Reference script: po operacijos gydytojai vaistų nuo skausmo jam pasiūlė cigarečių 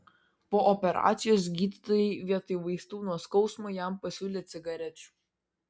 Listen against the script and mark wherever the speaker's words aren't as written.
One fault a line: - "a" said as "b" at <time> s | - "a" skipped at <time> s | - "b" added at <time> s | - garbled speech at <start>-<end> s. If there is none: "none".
- "vietoj" added at 2.3 s